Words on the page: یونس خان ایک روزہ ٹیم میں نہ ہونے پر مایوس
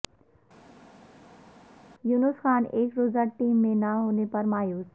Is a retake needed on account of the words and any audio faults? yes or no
no